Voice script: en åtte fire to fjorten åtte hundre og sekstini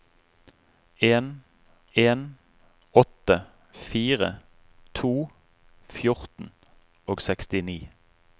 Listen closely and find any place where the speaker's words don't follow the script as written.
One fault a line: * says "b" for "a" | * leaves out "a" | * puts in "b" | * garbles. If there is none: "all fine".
* puts in "en"
* leaves out "åtte hundre"